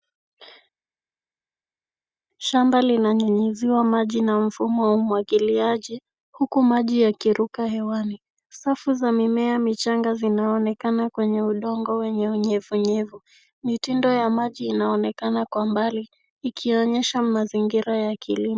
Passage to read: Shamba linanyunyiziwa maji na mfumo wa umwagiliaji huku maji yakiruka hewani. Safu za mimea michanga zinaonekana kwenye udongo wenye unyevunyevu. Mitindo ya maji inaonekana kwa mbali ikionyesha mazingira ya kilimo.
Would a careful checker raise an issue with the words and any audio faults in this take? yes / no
no